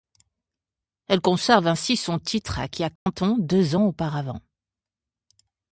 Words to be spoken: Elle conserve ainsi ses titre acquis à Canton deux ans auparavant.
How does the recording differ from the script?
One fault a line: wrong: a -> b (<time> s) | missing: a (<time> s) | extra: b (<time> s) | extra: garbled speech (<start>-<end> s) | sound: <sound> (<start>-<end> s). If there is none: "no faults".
wrong: ses -> son (1.9 s)
sound: dropout (3.0-3.1 s)